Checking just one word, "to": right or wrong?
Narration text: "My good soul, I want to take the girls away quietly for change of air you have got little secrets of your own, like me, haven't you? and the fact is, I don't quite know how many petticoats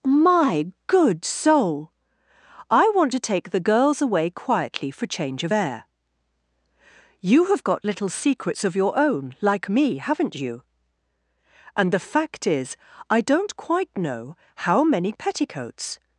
right